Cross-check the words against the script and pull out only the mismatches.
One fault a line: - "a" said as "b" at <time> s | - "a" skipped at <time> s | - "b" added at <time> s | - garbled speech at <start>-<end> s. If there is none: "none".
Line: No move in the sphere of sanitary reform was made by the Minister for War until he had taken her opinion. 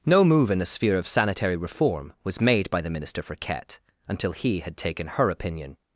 - "War" said as "Ket" at 3.4 s